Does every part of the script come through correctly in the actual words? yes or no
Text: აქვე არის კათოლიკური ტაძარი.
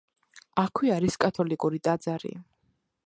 yes